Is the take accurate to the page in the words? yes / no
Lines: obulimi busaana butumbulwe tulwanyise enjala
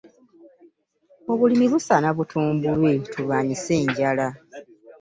yes